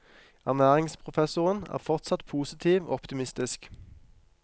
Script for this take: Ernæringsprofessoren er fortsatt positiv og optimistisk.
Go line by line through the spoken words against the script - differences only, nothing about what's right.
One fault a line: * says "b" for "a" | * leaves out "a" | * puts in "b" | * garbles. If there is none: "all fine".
all fine